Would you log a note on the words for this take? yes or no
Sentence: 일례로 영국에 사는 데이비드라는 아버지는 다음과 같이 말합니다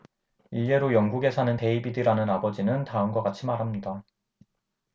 no